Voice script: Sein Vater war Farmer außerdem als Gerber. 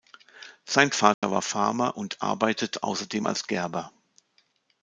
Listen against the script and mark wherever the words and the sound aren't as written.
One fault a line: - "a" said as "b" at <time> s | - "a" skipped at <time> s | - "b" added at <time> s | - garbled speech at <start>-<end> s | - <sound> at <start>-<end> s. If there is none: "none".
- dropout at 1.1-1.2 s
- "und arbeitet" added at 1.9 s